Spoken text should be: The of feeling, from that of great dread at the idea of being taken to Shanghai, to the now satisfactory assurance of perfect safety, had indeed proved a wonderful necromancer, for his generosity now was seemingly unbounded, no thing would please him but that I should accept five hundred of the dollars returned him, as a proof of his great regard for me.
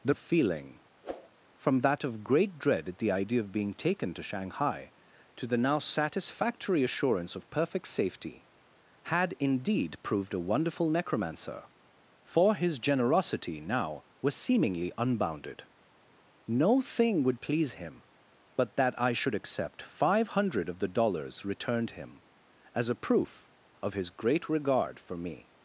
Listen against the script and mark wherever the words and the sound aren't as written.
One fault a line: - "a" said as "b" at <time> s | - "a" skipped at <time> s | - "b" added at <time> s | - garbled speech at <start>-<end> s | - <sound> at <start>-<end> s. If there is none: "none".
- whoosh at 1.0-1.3 s